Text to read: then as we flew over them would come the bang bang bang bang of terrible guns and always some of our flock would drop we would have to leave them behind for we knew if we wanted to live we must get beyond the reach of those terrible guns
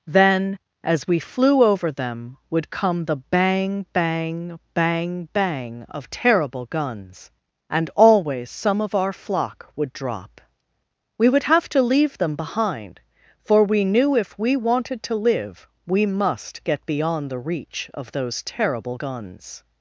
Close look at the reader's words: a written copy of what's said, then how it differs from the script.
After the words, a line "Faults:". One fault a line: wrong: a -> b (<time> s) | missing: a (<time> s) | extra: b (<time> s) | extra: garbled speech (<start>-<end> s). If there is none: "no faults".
then as we flew over them would come the bang bang bang bang of terrible guns and always some of our flock would drop we would have to leave them behind for we knew if we wanted to live we must get beyond the reach of those terrible guns
Faults:
no faults